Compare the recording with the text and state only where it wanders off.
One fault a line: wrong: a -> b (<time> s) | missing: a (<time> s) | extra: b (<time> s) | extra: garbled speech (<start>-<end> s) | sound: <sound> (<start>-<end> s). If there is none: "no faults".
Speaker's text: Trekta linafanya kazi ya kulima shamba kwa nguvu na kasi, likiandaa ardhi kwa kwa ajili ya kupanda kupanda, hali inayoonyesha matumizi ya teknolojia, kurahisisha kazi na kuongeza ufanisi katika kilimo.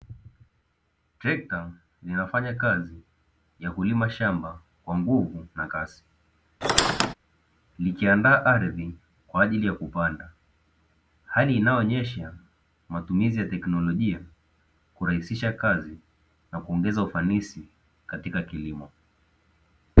sound: squeak (6.6-7.1 s)
missing: kwa (9.4 s)
missing: kupanda (10.3 s)